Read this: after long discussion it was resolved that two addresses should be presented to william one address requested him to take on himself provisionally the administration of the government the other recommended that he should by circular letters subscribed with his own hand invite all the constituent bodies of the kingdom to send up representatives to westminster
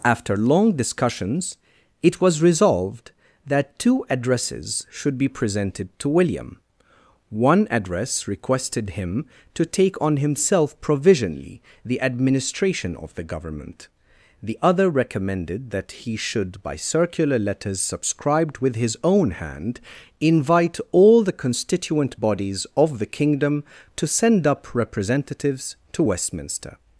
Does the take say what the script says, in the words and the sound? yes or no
no